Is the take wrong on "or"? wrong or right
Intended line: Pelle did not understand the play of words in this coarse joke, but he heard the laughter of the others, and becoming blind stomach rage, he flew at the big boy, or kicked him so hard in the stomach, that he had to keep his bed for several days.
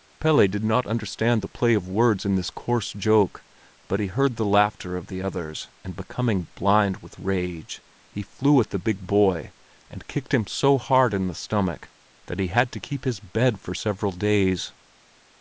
wrong